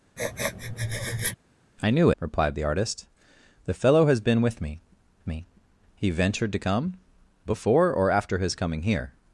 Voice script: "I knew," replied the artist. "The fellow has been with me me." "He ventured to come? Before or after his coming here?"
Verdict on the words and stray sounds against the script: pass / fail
fail